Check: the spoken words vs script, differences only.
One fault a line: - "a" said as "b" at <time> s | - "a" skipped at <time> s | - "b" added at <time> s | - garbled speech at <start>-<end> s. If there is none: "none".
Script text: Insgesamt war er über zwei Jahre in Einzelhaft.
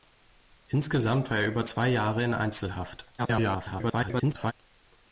- garbled speech at 3.2-4.5 s